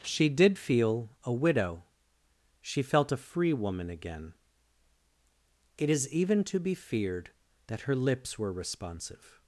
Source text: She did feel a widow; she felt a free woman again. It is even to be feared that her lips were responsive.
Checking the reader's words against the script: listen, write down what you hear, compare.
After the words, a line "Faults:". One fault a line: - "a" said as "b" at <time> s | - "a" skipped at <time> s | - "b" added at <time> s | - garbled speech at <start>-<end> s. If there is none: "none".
She did feel a widow; she felt a free woman again. It is even to be feared that her lips were responsive.
Faults:
none